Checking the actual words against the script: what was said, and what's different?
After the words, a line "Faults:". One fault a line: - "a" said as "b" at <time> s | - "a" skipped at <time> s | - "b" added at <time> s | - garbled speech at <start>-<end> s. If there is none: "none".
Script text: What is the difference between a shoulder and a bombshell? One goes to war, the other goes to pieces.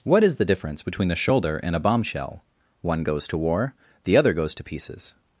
What is the difference between a shoulder and a bombshell? One goes to war, the other goes to pieces.
Faults:
none